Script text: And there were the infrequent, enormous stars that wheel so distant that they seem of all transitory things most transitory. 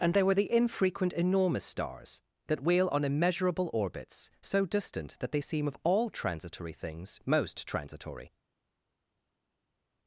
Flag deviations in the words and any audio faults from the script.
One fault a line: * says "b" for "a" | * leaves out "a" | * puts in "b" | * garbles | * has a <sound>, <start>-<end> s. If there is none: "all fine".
* puts in "on immeasurable orbits"